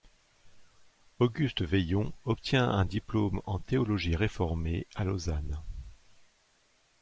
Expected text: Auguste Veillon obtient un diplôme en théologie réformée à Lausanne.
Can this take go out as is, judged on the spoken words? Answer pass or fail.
pass